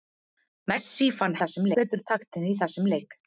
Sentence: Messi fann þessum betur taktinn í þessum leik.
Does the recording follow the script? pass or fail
pass